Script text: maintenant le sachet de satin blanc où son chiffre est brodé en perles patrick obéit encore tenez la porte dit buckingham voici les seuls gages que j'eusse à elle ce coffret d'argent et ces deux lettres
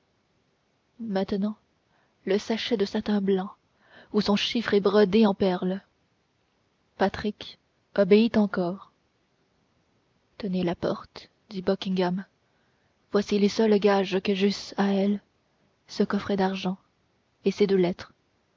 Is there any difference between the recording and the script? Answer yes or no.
no